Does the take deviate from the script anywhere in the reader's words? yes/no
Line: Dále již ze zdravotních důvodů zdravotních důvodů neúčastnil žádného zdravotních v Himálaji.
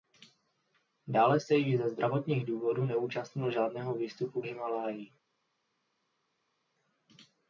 yes